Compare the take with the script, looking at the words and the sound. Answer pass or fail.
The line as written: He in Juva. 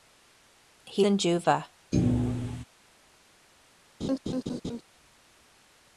fail